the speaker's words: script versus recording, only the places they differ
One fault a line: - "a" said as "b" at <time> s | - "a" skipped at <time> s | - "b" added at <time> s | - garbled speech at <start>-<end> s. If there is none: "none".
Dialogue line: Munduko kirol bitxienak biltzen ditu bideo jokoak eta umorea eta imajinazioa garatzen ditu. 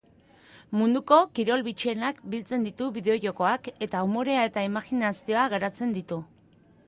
none